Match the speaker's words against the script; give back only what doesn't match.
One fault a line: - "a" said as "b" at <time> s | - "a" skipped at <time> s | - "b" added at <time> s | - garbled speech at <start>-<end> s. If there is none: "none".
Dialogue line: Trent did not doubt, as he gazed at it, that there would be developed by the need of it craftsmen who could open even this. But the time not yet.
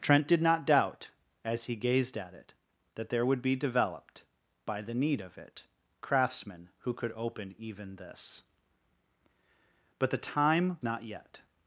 none